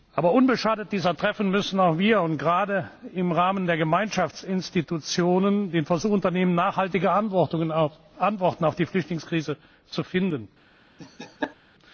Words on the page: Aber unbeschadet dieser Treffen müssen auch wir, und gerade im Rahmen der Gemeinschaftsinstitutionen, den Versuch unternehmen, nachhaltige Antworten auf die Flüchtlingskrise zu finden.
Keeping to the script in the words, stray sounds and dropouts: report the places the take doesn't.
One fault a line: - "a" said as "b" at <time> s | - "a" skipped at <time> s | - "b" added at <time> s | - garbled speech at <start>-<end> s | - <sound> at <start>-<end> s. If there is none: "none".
- laugh at 11.0-11.6 s